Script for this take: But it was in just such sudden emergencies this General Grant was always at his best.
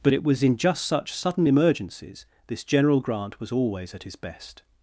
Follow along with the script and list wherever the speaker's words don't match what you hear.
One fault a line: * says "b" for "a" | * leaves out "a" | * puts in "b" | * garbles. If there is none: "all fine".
all fine